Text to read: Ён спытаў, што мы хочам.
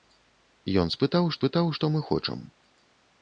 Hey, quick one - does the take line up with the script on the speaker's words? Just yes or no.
no